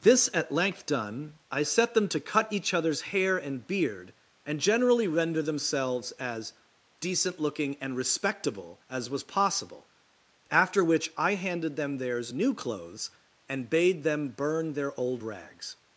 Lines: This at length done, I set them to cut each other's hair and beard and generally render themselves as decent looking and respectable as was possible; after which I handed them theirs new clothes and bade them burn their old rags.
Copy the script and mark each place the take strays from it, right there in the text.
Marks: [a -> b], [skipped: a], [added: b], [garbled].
This at length done, I set them to cut each other's hair and beard and generally render themselves as decent looking and respectable as was possible; after which I handed them theirs new clothes and bade them burn their old rags.